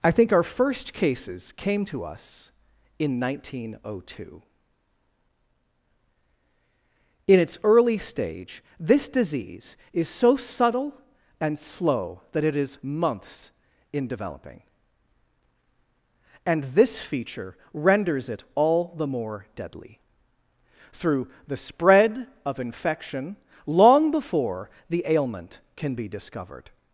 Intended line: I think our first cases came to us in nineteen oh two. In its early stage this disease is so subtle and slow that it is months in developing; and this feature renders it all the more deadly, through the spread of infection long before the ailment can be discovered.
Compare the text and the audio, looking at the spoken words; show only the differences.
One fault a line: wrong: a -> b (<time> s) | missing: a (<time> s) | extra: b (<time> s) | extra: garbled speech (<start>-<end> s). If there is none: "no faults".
no faults